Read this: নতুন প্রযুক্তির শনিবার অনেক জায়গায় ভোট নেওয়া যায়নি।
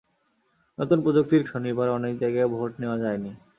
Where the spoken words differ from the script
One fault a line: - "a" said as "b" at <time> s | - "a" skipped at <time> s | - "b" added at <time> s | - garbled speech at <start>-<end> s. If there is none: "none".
none